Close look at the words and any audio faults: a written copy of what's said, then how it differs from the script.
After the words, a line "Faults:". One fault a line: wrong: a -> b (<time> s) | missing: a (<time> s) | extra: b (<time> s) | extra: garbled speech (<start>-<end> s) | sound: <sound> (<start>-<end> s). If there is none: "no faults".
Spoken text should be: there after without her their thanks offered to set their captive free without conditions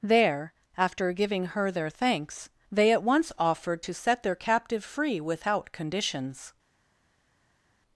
there after giving her their thanks they at once offered to set their captive free without conditions
Faults:
wrong: without -> giving (1.1 s)
extra: they at once (2.7 s)